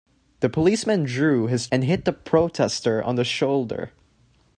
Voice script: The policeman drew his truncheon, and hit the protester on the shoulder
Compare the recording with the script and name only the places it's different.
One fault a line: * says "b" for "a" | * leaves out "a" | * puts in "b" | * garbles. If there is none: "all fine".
* leaves out "truncheon"